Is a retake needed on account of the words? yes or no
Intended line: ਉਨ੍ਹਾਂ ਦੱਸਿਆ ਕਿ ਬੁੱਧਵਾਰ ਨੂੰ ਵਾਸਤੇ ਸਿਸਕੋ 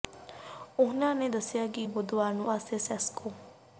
no